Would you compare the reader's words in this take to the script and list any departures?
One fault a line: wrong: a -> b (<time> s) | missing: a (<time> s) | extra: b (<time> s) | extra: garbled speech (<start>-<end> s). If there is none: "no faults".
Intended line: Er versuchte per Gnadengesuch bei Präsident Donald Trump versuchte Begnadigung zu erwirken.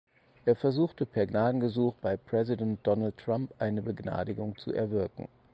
wrong: versuchte -> eine (3.6 s)